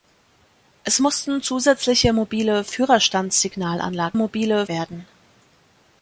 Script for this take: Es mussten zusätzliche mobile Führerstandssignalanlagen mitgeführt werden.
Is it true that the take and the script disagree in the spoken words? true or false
true